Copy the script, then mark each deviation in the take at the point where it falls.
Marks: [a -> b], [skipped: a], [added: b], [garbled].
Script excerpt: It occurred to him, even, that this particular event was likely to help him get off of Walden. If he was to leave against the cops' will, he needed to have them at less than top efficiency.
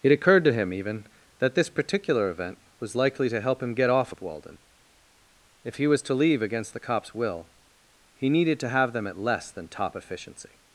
It occurred to him, even, that this particular event was likely to help him get off of Walden. If he was to leave against the cops' will, he needed to have them at less than top efficiency.